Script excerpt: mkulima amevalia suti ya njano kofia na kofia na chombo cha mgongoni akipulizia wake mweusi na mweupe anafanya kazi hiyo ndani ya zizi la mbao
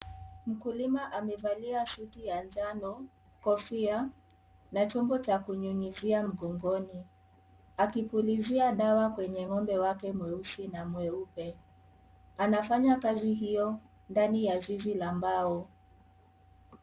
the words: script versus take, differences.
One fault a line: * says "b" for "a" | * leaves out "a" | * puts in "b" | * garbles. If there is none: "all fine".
* leaves out "kofia na"
* puts in "kunyunyizia"
* puts in "dawa kwenye ng'ombe"